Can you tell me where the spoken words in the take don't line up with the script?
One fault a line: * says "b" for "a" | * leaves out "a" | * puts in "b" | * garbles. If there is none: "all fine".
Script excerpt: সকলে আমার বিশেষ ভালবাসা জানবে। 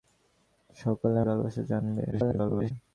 * leaves out "আমার বিশেষ"
* garbles